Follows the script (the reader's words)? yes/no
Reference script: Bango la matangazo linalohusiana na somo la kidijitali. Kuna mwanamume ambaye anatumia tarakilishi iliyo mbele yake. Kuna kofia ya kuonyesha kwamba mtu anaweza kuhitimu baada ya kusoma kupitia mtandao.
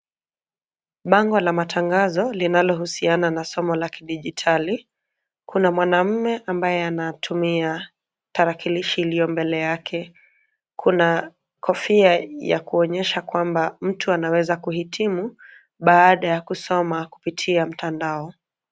yes